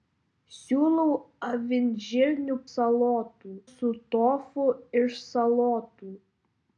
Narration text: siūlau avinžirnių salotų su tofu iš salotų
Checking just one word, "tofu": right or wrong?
right